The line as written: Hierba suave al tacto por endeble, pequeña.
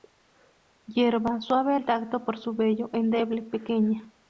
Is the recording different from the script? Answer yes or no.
yes